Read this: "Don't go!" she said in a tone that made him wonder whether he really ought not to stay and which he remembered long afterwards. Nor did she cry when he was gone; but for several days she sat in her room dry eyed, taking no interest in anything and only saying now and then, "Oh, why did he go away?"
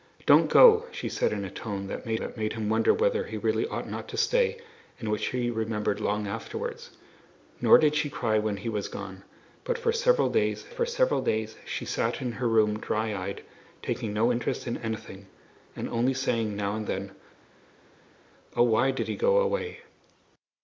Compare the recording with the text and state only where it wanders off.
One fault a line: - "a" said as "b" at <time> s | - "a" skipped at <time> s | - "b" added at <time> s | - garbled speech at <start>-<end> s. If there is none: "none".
- "that made" added at 2.2 s
- "for several days" added at 10.7 s